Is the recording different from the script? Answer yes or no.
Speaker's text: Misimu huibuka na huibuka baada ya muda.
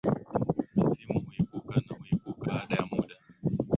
no